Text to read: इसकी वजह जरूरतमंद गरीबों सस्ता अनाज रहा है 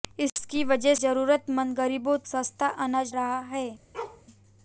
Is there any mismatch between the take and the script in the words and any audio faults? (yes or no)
yes